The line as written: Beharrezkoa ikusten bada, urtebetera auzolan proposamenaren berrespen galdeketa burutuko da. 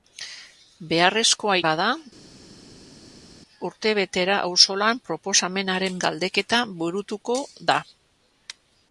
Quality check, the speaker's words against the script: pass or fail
fail